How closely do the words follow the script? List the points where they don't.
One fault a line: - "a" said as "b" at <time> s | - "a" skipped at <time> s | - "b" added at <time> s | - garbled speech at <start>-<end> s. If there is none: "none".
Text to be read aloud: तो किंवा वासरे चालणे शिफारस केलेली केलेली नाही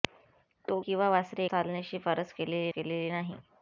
none